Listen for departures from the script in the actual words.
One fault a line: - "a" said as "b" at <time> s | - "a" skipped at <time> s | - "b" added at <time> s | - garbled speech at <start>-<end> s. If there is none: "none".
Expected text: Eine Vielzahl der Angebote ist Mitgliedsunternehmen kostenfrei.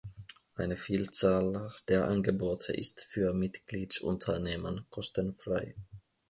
- "für" added at 3.0 s